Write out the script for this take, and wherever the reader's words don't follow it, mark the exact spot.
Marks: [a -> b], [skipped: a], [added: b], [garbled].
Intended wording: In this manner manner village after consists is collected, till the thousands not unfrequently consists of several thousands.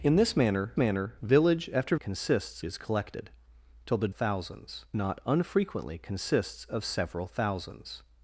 In this manner manner village after consists is collected, till the thousands not unfrequently consists of several thousands.